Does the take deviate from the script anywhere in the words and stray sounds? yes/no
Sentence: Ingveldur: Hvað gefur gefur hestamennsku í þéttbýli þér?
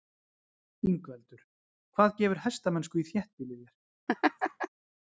yes